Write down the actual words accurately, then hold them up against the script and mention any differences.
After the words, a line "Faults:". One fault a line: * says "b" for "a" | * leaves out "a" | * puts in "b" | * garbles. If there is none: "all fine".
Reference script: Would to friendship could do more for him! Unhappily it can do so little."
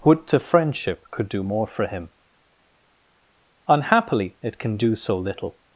Would to friendship could do more for him! Unhappily it can do so little."
Faults:
all fine